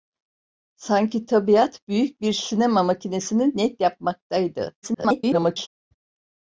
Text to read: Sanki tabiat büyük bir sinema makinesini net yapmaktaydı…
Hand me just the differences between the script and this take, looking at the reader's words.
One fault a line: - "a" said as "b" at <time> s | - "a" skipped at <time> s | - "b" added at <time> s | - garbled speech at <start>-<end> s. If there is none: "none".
- garbled speech at 4.8-5.7 s